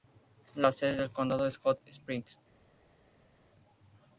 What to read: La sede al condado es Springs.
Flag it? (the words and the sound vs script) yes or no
yes